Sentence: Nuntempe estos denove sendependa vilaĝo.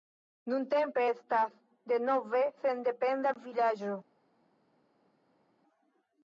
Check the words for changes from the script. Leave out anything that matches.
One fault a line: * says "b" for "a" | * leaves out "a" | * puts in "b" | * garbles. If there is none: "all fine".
* says "estas" for "estos"